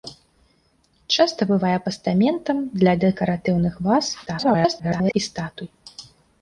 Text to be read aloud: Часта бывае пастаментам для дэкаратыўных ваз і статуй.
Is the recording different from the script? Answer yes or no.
yes